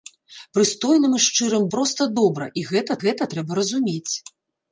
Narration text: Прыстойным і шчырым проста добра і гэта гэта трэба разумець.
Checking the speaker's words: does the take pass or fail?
pass